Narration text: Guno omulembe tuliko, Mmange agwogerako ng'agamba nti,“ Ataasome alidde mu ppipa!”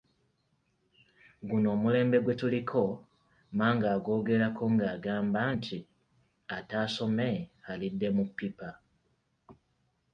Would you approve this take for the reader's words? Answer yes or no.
no